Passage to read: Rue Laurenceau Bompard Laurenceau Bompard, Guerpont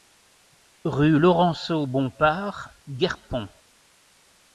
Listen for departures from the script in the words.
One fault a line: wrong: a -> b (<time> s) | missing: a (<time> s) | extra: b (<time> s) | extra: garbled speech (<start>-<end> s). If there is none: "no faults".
missing: Laurenceau Bompard (2.7 s)